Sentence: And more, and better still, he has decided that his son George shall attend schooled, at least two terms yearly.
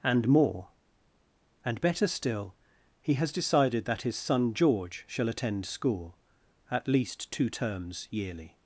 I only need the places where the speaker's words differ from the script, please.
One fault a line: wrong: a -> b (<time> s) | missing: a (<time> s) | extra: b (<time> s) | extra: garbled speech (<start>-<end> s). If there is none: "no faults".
wrong: schooled -> school (5.7 s)